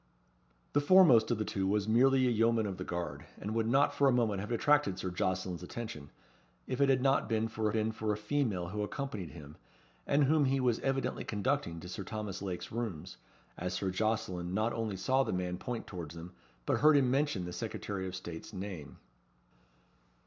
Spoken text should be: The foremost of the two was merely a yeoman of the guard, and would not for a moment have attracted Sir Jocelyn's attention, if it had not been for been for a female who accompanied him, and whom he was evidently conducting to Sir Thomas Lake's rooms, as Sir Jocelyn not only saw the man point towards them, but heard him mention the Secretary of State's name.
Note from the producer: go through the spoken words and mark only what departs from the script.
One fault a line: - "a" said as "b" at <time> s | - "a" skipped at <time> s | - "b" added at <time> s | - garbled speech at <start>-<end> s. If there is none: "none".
none